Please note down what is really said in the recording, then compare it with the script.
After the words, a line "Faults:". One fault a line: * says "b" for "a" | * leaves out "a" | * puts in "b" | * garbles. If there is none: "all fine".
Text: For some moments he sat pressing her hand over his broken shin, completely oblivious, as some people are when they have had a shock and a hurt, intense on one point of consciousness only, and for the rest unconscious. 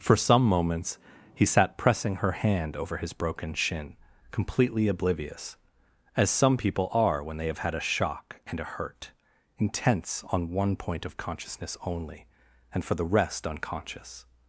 For some moments he sat pressing her hand over his broken shin, completely oblivious, as some people are when they have had a shock and a hurt, intense on one point of consciousness only, and for the rest unconscious.
Faults:
all fine